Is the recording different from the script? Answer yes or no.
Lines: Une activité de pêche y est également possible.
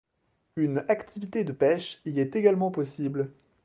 no